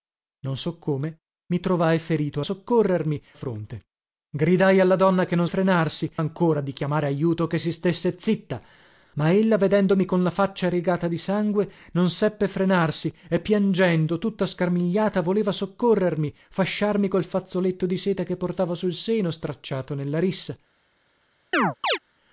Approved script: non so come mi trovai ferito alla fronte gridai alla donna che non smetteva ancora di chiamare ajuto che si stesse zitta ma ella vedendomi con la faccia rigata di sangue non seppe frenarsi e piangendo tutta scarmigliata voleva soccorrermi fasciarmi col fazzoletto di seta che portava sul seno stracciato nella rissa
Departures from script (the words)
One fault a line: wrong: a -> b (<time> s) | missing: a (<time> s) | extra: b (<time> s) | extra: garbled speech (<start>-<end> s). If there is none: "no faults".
wrong: alla -> soccorrermi (2.4 s)
wrong: smetteva -> frenarsi (5.5 s)